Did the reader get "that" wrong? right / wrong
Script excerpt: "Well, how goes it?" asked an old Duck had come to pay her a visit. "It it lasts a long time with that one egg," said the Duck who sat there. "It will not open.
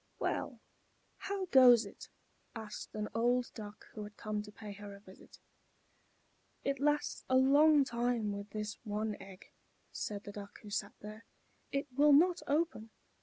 wrong